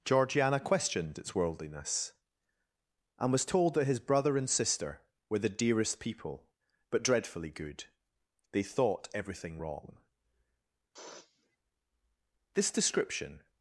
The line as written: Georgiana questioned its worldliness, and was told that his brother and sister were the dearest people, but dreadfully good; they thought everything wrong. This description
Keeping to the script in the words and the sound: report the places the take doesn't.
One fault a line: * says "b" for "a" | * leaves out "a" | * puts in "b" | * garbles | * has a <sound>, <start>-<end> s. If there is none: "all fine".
* has a sniff, 10.9-11.6 s